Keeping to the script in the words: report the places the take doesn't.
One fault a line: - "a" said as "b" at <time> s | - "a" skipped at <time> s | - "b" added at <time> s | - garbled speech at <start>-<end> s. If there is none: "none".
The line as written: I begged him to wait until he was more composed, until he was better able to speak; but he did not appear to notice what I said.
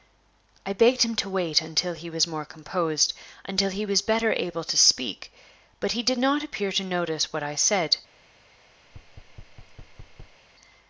none